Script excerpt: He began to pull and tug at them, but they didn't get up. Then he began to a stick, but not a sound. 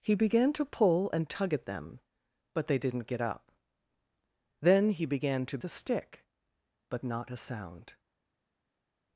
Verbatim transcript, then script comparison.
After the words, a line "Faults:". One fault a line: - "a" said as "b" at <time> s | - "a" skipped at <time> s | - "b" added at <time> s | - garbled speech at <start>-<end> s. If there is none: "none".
He began to pull and tug at them, but they didn't get up. Then he began to a stick, but not a sound.
Faults:
none